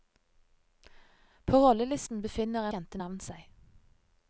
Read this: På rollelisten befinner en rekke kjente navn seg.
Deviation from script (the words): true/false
true